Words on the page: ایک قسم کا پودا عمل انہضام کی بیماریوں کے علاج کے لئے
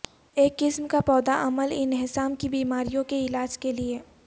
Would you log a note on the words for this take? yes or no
no